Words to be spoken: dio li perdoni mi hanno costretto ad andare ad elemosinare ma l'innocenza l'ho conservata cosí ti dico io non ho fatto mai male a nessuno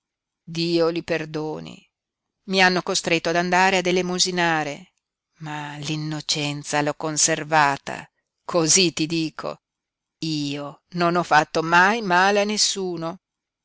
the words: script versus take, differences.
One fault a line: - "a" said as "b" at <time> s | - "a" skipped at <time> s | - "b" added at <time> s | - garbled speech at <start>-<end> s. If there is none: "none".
none